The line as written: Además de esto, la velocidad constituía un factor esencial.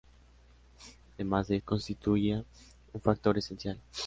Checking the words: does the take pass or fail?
fail